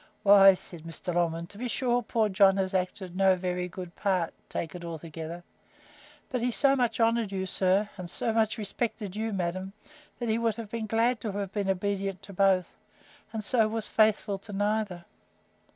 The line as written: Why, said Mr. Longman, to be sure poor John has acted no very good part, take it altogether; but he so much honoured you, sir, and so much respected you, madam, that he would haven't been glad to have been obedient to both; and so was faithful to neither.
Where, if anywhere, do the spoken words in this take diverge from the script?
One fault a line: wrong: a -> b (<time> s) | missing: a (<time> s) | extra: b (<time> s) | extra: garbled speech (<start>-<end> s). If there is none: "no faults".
wrong: haven't -> have (10.5 s)